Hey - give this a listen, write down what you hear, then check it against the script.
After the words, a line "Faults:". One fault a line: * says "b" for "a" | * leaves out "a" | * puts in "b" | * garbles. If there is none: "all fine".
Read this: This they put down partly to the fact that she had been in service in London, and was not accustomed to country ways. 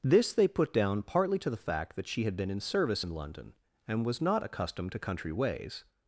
This they put down partly to the fact that she had been in service in London, and was not accustomed to country ways.
Faults:
all fine